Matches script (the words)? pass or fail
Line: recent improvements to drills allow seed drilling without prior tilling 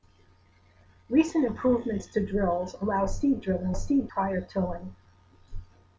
fail